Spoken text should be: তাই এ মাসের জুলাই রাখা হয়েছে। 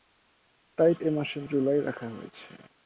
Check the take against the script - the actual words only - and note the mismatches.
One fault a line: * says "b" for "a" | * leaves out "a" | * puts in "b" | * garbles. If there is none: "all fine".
all fine